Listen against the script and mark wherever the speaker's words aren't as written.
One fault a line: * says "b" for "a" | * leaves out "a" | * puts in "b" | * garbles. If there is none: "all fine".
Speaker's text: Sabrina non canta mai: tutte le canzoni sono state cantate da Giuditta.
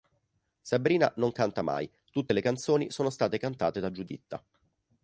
all fine